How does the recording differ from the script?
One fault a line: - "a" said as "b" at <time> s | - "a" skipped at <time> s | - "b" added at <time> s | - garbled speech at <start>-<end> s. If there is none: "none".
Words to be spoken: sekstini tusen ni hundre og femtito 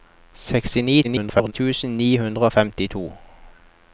- garbled speech at 1.0-1.5 s